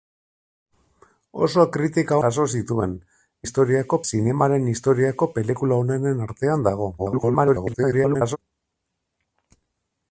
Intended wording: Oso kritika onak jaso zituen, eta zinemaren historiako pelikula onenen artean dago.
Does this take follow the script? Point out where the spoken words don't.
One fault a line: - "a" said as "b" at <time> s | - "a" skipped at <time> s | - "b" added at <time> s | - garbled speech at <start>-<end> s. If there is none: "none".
- "onak" skipped at 2.2 s
- "eta" said as "historiako" at 3.4 s
- garbled speech at 7.0-8.4 s